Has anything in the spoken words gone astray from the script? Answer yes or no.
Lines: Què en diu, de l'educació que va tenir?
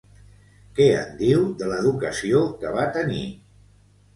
no